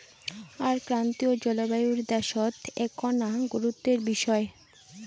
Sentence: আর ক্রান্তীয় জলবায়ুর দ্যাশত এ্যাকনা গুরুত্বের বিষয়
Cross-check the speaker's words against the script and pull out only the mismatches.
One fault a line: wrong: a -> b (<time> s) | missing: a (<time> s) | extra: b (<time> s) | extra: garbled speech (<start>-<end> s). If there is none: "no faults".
no faults